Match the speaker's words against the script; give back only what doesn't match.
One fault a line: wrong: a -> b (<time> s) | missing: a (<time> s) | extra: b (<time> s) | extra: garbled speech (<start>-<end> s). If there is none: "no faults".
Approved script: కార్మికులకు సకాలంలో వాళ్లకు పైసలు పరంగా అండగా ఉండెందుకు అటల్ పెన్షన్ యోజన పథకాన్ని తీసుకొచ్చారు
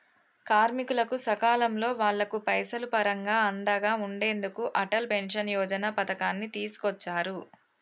no faults